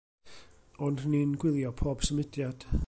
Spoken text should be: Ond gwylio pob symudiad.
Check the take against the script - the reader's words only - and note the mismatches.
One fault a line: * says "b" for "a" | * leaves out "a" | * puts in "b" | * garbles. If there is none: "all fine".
* puts in "ni'n"